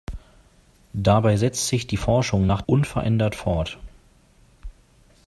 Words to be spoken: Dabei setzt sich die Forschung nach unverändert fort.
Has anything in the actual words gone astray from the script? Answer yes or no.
no